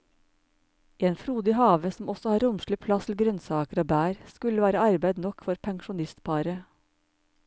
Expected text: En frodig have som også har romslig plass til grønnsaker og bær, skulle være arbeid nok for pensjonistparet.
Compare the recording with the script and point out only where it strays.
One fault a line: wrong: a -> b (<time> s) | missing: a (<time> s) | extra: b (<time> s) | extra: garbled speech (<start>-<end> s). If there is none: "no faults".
no faults